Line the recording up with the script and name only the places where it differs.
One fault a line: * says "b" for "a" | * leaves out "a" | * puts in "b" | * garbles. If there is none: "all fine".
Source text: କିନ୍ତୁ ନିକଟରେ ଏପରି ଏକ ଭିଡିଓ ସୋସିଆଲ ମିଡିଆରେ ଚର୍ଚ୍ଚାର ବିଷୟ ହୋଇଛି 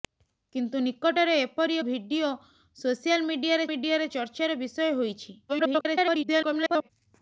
* leaves out "ଏକ"
* puts in "ମିଡିଆରେ"
* garbles